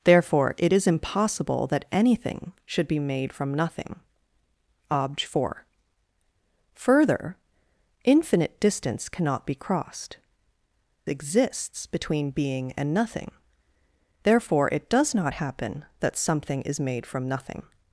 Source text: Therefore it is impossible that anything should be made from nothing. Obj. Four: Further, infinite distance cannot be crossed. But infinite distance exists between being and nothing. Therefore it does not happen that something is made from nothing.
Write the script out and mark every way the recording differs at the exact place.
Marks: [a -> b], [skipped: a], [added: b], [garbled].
Therefore it is impossible that anything should be made from nothing. Obj. Four: Further, infinite distance cannot be crossed. [skipped: But infinite distance] exists between being and nothing. Therefore it does not happen that something is made from nothing.